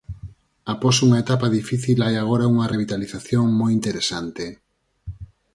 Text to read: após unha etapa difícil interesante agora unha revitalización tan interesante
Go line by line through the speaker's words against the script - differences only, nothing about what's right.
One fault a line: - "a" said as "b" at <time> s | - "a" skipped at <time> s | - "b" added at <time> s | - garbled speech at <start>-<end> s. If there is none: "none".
- "interesante" said as "hai" at 2.0 s
- "tan" said as "moi" at 3.6 s